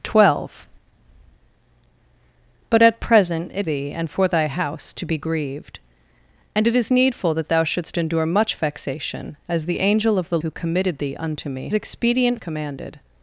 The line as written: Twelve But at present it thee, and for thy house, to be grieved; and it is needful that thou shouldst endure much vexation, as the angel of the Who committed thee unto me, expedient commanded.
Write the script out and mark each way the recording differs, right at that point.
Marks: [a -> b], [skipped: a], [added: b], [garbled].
Twelve But at present it thee, and for thy house, to be grieved; and it is needful that thou shouldst endure much vexation, as the angel of the Who committed thee unto me, expedient commanded.